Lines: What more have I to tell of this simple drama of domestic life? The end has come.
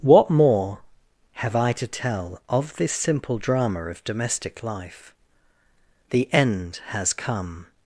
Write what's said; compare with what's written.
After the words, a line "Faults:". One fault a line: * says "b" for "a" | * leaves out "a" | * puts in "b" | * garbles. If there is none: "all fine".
What more have I to tell of this simple drama of domestic life? The end has come.
Faults:
all fine